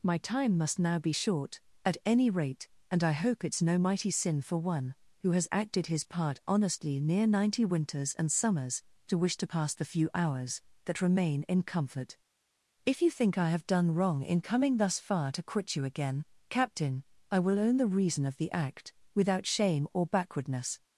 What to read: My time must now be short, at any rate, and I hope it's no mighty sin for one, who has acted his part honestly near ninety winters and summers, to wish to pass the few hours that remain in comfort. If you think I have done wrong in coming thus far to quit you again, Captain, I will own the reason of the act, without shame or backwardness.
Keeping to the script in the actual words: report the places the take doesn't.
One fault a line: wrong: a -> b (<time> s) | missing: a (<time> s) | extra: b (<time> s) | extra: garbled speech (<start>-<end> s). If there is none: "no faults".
no faults